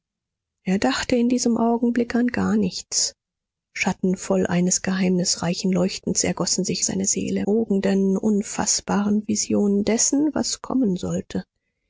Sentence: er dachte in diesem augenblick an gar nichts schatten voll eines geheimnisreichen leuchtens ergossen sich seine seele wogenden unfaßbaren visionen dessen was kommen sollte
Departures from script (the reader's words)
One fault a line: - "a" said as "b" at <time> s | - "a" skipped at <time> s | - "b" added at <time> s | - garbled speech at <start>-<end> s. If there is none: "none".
none